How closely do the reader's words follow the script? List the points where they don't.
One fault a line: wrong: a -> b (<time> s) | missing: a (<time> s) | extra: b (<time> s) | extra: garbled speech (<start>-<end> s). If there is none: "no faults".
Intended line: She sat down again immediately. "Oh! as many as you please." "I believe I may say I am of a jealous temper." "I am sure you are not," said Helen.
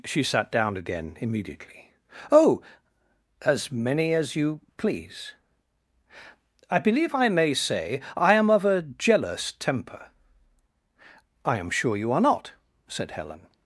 no faults